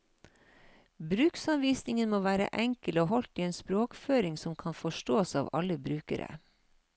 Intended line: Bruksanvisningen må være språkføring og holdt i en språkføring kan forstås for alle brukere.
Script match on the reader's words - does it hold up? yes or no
no